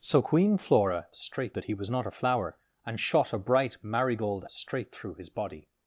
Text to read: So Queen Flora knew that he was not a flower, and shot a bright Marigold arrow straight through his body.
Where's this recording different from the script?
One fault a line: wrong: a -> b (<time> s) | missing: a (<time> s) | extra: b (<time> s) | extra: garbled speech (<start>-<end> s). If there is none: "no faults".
wrong: knew -> straight (1.1 s)
missing: arrow (4.4 s)